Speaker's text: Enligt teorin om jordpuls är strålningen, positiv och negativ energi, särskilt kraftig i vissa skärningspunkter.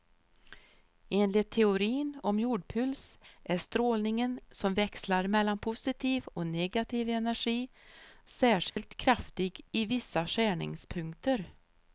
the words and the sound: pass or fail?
fail